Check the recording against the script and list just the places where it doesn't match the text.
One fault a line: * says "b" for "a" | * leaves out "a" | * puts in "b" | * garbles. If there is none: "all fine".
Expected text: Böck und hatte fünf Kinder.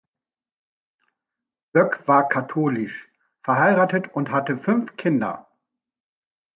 * puts in "war katholisch verheiratet"